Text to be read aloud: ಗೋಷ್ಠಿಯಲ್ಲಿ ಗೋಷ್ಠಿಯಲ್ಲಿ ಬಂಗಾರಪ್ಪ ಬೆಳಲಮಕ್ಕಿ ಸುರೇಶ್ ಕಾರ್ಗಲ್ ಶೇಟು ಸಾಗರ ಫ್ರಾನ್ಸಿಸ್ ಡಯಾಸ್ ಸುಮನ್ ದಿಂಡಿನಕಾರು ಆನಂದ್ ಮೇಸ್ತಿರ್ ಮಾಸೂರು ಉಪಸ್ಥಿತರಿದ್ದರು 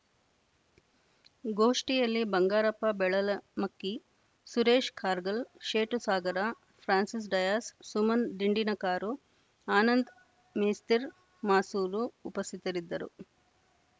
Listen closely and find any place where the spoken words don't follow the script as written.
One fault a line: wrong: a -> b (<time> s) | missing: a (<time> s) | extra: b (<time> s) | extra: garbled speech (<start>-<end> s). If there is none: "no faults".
missing: ಗೋಷ್ಠಿಯಲ್ಲಿ (2.2 s)